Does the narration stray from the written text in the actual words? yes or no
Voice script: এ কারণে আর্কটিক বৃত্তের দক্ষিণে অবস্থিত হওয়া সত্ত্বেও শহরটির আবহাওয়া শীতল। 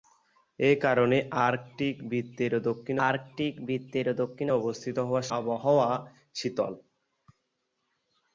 yes